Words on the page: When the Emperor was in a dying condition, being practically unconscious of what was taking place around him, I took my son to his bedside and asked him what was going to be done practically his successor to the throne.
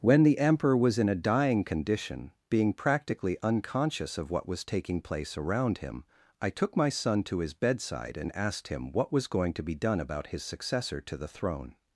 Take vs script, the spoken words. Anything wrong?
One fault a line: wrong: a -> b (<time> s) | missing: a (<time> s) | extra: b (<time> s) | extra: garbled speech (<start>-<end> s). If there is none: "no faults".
wrong: practically -> about (10.0 s)